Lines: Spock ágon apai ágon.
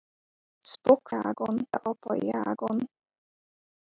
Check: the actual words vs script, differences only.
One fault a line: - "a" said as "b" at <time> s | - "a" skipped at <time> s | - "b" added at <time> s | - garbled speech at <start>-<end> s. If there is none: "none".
none